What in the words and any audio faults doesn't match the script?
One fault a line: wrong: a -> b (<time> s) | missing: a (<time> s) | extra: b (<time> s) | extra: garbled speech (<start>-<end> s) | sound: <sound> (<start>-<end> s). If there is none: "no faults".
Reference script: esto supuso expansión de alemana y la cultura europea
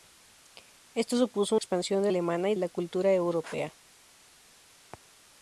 no faults